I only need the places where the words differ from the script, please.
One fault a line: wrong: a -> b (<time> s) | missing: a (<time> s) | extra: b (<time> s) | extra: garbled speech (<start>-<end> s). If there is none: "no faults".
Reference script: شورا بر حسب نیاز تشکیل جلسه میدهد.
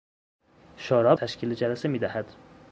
missing: بر حسب نیاز (1.1 s)